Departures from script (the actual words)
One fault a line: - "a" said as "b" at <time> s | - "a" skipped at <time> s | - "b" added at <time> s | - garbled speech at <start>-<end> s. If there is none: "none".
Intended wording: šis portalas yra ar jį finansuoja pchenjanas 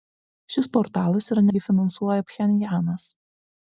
none